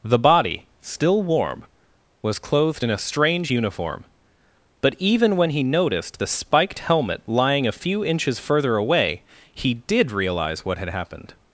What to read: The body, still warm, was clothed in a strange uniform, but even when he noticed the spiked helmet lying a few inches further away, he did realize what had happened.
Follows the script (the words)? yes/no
yes